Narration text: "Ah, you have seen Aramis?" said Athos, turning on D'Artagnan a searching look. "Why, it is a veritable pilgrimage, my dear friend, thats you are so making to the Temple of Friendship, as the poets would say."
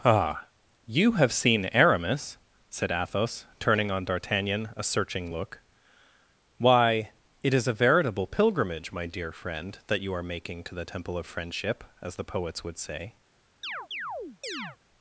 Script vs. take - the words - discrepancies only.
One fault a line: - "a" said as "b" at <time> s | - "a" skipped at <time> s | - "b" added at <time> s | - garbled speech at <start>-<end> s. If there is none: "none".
- "thats" said as "that" at 9.9 s
- "so" skipped at 10.2 s